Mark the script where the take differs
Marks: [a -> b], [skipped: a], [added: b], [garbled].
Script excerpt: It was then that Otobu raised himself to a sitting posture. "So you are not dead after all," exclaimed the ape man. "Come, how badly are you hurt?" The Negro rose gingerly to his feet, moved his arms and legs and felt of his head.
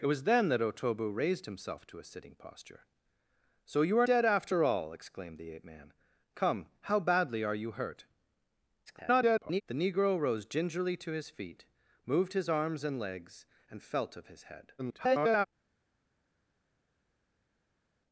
It was then that Otobu raised himself to a sitting posture. "So you are [skipped: not] dead after all," exclaimed the ape man. "Come, how badly are you hurt?" [garbled] The Negro rose gingerly to his feet, moved his arms and legs and felt of his head. [garbled]